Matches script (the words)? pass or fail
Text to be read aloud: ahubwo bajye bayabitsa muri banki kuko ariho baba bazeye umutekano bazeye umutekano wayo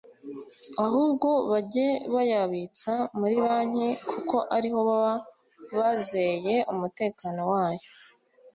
fail